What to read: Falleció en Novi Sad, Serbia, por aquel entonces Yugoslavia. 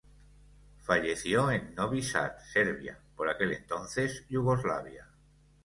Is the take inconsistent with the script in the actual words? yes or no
no